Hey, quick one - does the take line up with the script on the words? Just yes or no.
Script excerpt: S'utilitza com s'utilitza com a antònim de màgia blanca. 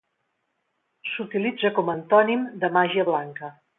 no